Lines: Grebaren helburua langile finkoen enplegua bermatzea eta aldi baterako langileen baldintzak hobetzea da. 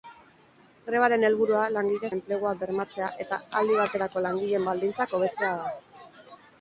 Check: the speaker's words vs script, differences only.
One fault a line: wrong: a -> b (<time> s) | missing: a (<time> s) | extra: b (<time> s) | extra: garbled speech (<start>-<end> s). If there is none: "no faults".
missing: finkoen (2.1 s)